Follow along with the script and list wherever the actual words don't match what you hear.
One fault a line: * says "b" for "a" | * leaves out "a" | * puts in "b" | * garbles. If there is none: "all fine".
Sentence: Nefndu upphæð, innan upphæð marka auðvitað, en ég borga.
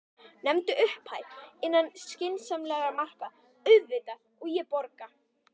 * says "skynsamlegra" for "upphæð"
* says "og" for "en"